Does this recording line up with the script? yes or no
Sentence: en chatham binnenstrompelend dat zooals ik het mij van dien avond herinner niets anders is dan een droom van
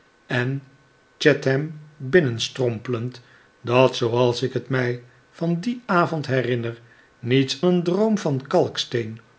no